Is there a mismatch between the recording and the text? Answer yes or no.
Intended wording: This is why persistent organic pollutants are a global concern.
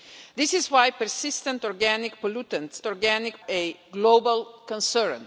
yes